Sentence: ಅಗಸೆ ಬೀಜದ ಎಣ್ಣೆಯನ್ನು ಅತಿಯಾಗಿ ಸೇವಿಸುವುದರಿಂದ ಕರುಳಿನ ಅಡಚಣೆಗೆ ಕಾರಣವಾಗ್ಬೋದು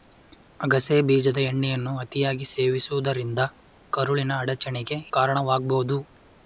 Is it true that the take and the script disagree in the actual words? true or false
false